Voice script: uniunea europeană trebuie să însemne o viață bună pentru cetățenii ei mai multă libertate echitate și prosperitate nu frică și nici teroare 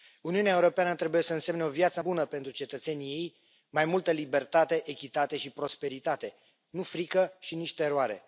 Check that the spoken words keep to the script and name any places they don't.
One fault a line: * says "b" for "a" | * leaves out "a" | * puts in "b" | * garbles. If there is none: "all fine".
all fine